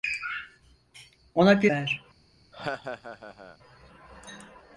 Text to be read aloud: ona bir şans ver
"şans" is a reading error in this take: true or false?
true